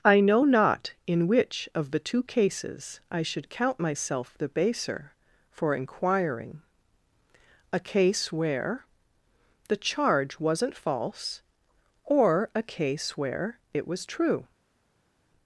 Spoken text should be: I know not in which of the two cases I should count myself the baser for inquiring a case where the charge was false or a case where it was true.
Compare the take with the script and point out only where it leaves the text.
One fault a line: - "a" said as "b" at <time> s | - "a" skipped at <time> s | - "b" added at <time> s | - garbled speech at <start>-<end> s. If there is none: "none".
- "was" said as "wasn't" at 10.4 s